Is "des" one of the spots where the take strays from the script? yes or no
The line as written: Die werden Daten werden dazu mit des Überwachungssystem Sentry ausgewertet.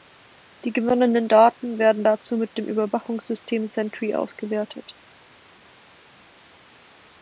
yes